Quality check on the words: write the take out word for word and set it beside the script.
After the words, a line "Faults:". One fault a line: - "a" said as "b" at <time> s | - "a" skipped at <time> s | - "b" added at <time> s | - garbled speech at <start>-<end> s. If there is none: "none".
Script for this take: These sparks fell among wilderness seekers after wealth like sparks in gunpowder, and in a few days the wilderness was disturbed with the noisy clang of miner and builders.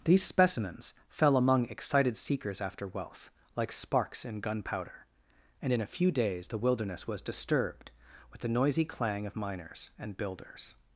These specimens fell among excited seekers after wealth like sparks in gunpowder, and in a few days the wilderness was disturbed with the noisy clang of miners and builders.
Faults:
- "sparks" said as "specimens" at 0.2 s
- "wilderness" said as "excited" at 1.6 s
- "miner" said as "miners" at 9.3 s